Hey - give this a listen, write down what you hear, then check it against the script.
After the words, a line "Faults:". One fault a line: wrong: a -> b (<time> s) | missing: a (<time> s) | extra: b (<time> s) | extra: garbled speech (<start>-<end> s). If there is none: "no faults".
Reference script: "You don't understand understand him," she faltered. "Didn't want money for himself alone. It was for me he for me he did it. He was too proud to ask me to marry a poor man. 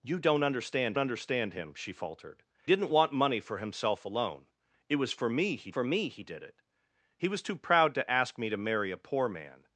"You don't understand understand him," she faltered. "Didn't want money for himself alone. It was for me he for me he did it. He was too proud to ask me to marry a poor man.
Faults:
no faults